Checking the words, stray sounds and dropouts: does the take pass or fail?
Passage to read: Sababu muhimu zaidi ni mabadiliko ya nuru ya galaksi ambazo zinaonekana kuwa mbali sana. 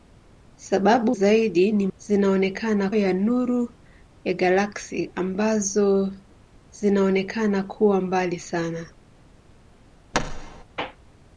fail